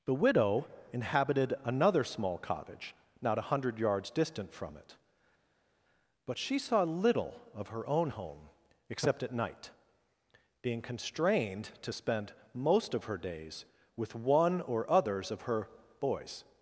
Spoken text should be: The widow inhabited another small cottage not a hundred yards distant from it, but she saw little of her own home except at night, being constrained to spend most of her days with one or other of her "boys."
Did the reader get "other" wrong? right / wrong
wrong